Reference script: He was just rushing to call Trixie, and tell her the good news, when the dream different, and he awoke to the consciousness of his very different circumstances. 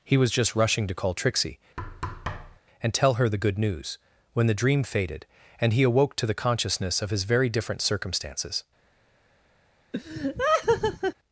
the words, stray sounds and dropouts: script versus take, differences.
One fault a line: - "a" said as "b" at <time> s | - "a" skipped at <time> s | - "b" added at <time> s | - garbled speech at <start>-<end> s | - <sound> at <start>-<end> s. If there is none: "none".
- thud at 1.8-2.6 s
- "different" said as "faded" at 4.8 s
- laugh at 9.9-11.1 s